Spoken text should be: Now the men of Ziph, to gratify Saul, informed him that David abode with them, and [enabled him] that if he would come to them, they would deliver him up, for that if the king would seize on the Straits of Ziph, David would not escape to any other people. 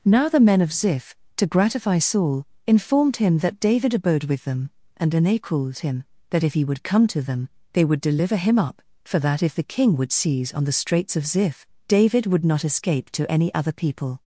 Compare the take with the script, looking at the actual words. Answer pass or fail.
pass